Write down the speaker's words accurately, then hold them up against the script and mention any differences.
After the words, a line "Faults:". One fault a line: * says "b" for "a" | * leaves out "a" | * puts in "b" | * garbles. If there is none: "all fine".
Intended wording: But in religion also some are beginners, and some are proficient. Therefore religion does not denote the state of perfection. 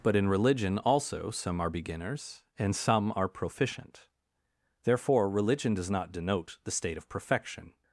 But in religion also some are beginners, and some are proficient. Therefore religion does not denote the state of perfection.
Faults:
all fine